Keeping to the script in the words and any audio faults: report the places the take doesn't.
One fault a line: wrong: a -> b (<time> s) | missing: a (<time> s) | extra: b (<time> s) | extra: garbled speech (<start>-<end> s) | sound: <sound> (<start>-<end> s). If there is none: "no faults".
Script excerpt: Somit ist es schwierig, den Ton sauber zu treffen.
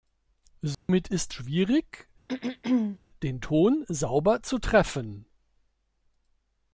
sound: dropout (0.7-0.9 s)
missing: es (1.3 s)
sound: throat clearing (2.3-3.0 s)